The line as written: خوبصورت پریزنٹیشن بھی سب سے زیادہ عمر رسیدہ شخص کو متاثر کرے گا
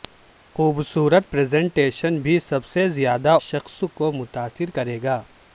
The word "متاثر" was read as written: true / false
true